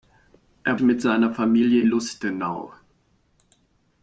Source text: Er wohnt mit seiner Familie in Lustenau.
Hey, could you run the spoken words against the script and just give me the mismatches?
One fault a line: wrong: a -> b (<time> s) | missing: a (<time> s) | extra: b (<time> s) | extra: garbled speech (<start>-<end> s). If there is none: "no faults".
missing: wohnt (0.8 s)
missing: in (1.8 s)